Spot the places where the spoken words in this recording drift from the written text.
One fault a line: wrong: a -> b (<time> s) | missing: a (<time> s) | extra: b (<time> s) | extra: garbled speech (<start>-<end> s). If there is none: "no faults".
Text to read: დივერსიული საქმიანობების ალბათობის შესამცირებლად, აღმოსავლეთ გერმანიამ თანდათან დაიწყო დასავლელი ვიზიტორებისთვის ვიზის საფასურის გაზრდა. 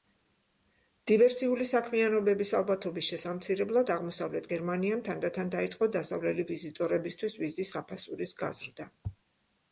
no faults